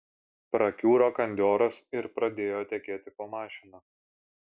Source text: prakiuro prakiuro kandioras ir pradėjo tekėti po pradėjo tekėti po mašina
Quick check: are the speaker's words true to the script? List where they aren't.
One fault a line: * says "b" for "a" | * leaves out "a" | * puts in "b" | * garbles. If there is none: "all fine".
* leaves out "prakiuro"
* leaves out "pradėjo tekėti po"